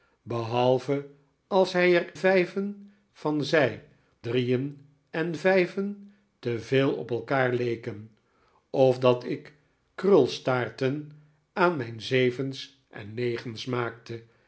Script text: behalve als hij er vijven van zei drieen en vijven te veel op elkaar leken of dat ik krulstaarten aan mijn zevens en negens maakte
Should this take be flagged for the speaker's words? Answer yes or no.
no